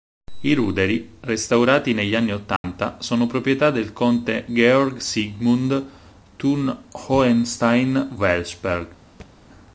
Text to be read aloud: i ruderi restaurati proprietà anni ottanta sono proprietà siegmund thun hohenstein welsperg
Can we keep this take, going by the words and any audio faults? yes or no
no